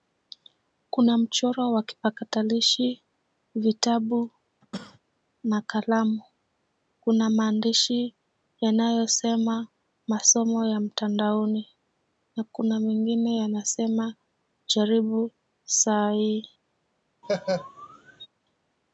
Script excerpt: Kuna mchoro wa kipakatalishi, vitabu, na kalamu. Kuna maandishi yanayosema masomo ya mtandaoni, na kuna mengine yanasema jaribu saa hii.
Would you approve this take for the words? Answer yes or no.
yes